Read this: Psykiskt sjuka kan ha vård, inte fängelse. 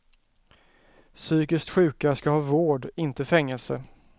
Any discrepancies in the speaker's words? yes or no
yes